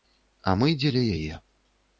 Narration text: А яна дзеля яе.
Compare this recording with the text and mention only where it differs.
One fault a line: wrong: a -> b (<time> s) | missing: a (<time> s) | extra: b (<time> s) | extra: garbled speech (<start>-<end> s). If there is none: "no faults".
wrong: яна -> мы (0.6 s)